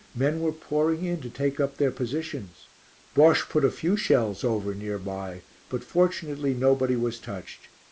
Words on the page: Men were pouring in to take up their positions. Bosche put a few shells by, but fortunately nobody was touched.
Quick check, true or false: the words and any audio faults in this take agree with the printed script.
false